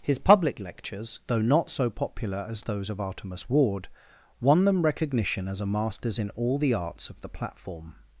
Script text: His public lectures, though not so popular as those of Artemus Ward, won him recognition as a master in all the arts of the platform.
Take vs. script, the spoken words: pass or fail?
fail